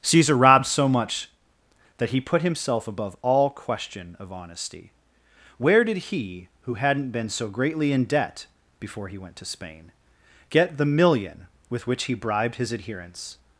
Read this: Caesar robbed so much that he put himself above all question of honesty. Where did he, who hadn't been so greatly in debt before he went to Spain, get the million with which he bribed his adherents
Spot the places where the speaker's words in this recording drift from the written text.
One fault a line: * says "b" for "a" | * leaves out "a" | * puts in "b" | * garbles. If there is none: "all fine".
all fine